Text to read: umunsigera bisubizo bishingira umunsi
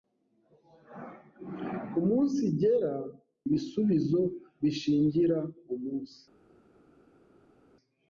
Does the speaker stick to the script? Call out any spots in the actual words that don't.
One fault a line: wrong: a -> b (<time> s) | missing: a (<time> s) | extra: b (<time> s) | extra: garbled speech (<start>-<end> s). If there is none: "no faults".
no faults